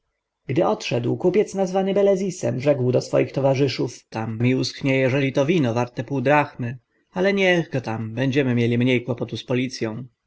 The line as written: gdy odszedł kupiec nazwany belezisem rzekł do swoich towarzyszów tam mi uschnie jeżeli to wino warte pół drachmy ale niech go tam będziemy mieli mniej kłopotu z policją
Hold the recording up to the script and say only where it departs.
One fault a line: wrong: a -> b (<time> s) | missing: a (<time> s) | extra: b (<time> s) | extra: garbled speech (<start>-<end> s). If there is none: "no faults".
no faults